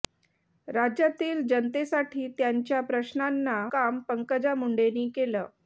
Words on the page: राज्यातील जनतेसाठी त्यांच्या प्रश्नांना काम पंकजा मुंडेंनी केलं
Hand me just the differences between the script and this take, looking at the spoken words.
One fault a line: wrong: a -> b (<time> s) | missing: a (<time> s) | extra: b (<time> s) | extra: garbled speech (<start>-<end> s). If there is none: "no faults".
no faults